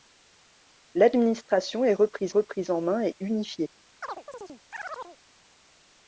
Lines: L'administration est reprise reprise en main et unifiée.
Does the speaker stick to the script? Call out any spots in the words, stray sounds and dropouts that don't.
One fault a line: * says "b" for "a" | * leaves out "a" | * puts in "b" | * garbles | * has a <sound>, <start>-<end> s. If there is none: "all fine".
* has a chirp, 4.0-5.2 s